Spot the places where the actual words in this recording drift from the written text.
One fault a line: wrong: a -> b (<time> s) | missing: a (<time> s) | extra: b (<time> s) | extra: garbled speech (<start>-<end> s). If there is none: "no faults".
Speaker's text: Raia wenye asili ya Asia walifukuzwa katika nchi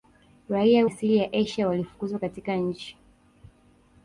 missing: wenye (0.9 s)